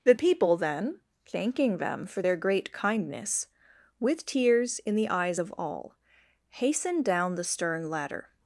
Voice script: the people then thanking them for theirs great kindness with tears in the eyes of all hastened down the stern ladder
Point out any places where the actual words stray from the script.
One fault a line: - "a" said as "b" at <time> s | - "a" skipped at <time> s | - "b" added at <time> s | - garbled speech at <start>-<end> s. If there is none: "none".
- "theirs" said as "their" at 2.2 s